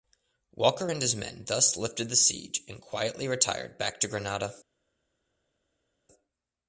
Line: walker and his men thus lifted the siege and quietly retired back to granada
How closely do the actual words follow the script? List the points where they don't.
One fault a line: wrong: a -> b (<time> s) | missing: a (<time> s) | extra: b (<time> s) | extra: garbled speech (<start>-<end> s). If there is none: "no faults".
no faults